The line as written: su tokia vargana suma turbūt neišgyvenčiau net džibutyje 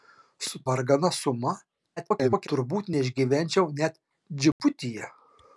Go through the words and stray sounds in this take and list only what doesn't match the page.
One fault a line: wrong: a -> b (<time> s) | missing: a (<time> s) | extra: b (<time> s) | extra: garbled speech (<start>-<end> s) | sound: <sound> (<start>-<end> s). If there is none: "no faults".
missing: tokia (0.6 s)
extra: garbled speech (2.0-2.5 s)
sound: dropout (4.5-4.6 s)